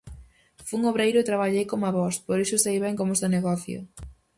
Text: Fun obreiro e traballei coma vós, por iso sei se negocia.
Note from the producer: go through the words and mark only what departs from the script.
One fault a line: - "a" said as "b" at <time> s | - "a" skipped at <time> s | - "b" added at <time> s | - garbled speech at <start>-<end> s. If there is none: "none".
- "ben como" added at 2.8 s